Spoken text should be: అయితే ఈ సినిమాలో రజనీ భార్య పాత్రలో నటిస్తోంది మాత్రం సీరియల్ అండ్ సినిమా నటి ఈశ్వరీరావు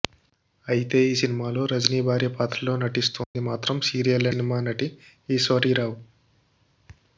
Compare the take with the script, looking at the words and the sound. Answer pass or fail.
fail